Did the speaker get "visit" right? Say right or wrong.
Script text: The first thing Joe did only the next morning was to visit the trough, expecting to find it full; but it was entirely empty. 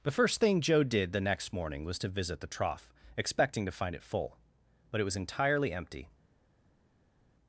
right